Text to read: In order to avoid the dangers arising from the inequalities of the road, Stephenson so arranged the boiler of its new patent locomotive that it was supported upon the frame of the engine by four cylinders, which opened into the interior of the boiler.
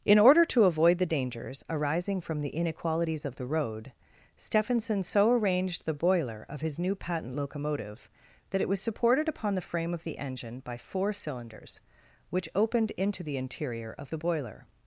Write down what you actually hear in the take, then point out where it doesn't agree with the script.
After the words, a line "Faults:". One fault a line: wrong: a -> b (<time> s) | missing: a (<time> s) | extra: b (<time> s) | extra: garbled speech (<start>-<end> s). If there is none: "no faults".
In order to avoid the dangers arising from the inequalities of the road, Stephenson so arranged the boiler of his new patent locomotive that it was supported upon the frame of the engine by four cylinders, which opened into the interior of the boiler.
Faults:
wrong: its -> his (6.6 s)